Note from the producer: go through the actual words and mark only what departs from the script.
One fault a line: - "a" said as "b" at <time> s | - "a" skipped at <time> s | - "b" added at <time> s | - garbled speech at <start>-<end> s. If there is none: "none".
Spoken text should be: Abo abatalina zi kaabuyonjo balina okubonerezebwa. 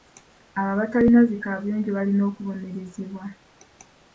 none